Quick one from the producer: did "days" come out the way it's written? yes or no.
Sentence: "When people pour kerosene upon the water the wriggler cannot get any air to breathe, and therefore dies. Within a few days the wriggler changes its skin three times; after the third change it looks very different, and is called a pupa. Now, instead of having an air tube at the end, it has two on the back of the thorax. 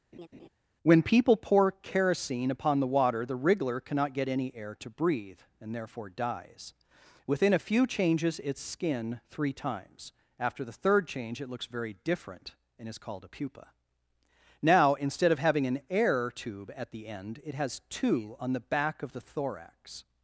no